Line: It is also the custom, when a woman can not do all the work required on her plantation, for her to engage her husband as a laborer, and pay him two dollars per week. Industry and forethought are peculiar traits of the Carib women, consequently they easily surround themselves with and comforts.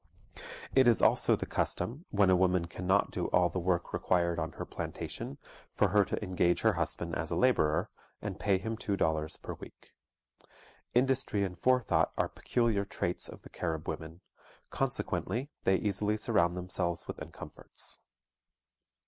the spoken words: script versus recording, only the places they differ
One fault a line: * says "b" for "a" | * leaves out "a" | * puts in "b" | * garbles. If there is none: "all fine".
all fine